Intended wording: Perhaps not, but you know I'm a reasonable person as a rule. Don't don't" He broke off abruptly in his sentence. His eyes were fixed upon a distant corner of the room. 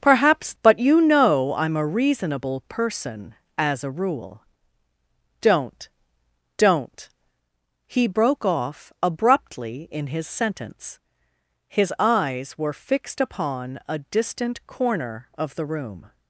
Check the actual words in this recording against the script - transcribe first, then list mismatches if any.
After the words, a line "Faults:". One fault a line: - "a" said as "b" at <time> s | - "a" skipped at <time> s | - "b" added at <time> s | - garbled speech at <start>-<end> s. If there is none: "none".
Perhaps but you know I'm a reasonable person as a rule. Don't don't" He broke off abruptly in his sentence. His eyes were fixed upon a distant corner of the room.
Faults:
- "not" skipped at 0.6 s